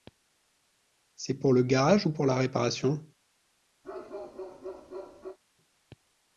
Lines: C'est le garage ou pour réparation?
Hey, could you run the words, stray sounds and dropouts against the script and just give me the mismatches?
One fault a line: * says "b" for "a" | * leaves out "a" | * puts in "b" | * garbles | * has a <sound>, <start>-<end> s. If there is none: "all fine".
* puts in "pour"
* puts in "la"
* has a bark, 3.8-5.4 s